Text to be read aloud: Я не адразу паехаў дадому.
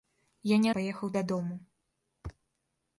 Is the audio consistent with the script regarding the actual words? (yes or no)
no